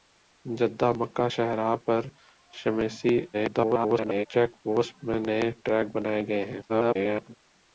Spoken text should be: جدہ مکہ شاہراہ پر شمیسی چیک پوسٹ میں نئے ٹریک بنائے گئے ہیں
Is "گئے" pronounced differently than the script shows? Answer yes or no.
no